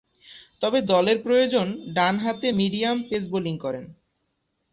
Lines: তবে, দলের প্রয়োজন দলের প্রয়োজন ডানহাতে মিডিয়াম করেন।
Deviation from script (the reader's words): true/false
true